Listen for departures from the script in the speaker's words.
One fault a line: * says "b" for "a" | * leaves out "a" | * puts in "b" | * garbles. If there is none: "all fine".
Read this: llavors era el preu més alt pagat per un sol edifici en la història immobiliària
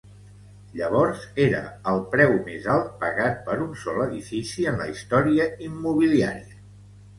all fine